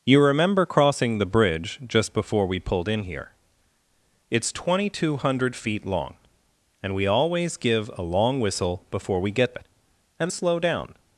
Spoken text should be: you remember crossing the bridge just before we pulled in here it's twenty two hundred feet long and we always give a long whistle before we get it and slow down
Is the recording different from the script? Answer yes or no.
no